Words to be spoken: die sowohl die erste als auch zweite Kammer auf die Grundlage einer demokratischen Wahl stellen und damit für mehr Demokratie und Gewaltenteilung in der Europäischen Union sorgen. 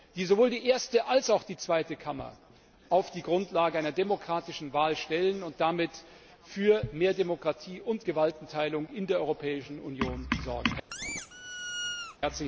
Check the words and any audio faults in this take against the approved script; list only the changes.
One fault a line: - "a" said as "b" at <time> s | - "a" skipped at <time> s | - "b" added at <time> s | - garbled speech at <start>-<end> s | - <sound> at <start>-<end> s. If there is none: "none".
- "die" added at 1.4 s
- squeak at 10.9-12.2 s